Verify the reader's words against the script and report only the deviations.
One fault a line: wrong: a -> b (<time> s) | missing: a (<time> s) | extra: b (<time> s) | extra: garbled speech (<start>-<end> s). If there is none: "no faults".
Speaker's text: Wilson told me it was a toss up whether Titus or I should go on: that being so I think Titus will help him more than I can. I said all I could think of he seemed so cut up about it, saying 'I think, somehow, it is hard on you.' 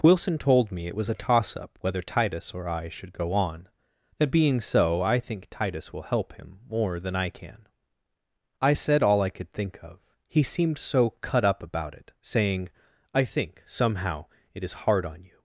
no faults